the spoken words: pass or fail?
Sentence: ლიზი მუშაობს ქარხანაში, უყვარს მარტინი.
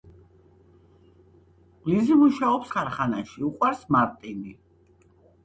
pass